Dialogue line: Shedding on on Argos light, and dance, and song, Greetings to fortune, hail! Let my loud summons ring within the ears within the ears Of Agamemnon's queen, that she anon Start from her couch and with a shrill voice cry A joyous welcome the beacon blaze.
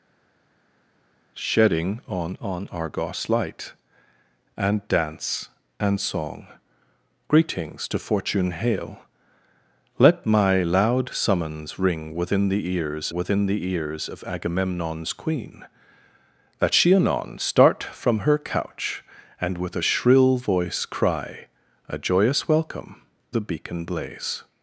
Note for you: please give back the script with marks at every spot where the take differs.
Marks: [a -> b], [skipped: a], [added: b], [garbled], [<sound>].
Shedding on on Argos light, and dance, and song, Greetings to fortune, hail! Let my loud summons ring within the ears within the ears Of Agamemnon's queen, that she anon Start from her couch and with a shrill voice cry A joyous welcome the beacon blaze.